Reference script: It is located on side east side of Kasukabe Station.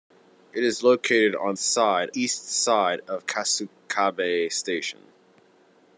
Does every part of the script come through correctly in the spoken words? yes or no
yes